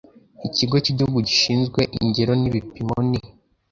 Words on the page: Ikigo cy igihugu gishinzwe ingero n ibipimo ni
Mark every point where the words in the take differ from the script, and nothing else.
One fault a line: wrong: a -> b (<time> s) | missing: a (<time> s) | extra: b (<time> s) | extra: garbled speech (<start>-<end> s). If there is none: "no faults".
no faults